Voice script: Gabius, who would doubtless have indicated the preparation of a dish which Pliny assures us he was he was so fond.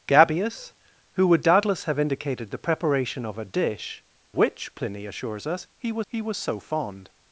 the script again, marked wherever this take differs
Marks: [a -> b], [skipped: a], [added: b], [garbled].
Gabius, who would doubtless have indicated the preparation of a dish which Pliny assures us he was he was so fond.